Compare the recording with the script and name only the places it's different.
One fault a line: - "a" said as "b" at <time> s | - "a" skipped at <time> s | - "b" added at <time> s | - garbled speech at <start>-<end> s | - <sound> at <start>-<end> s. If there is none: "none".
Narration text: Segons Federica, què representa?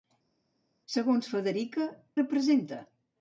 - "què" skipped at 1.9 s